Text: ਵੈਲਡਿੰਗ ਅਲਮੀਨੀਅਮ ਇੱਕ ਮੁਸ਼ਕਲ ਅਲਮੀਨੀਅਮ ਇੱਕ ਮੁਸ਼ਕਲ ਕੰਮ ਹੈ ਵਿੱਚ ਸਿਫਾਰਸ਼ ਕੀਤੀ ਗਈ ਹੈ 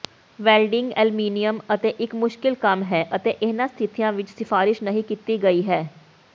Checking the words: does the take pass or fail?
fail